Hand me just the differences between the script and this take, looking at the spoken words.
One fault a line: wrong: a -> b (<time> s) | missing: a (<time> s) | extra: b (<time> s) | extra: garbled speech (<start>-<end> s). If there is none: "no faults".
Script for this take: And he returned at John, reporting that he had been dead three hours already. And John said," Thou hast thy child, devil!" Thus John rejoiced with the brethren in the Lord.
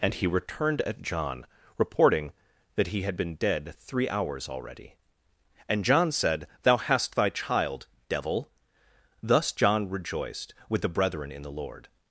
no faults